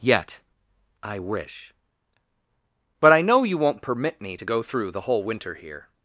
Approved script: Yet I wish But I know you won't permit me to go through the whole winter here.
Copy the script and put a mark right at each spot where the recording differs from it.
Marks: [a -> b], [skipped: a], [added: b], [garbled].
Yet I wish But I know you won't permit me to go through the whole winter here.